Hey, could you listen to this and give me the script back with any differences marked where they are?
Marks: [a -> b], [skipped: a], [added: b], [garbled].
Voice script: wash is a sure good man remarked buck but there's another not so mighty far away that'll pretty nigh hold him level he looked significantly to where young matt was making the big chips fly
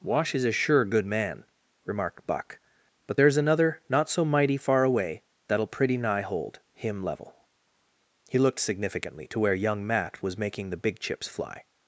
wash is a sure good man remarked buck but there's another not so mighty far away that'll pretty nigh hold him level he looked significantly to where young matt was making the big chips fly